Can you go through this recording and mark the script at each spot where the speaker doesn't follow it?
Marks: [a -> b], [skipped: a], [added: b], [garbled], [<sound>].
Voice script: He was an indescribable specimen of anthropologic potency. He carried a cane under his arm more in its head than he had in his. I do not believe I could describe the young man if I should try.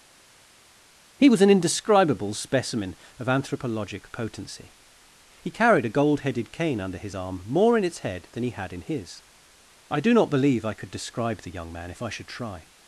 He was an indescribable specimen of anthropologic potency. He carried a [added: gold headed] cane under his arm more in its head than he had in his. I do not believe I could describe the young man if I should try.